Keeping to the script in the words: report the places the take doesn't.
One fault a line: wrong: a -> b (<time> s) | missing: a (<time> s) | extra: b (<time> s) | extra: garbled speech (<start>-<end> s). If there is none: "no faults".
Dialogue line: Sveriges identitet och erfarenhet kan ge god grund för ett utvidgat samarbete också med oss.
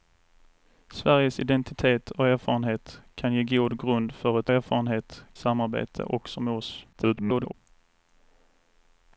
wrong: utvidgat -> erfarenhet (4.5 s)
extra: garbled speech (6.9-7.5 s)